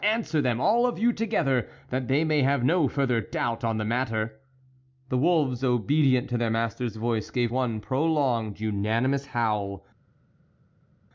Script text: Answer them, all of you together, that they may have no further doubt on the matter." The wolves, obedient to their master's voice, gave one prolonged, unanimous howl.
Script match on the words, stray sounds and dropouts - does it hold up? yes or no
yes